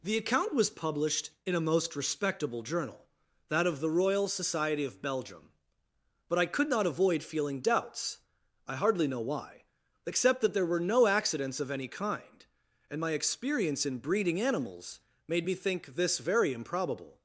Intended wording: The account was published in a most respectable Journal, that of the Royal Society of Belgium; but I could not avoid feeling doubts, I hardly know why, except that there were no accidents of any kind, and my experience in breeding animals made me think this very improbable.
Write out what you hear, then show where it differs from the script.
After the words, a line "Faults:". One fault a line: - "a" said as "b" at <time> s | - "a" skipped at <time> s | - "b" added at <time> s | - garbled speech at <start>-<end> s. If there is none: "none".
The account was published in a most respectable Journal, that of the Royal Society of Belgium; but I could not avoid feeling doubts, I hardly know why, except that there were no accidents of any kind, and my experience in breeding animals made me think this very improbable.
Faults:
none